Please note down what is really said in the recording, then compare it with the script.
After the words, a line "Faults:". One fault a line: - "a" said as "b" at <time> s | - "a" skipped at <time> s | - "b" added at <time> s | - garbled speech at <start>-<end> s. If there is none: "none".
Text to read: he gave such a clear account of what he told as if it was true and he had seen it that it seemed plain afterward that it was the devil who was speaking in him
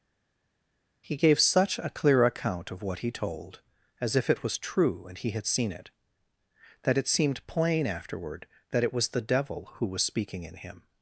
he gave such a clear account of what he told as if it was true and he had seen it that it seemed plain afterward that it was the devil who was speaking in him
Faults:
none